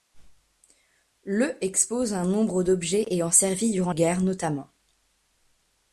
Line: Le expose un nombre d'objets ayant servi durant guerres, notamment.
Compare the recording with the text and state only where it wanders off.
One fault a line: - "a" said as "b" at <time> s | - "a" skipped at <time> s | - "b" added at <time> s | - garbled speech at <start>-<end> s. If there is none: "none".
none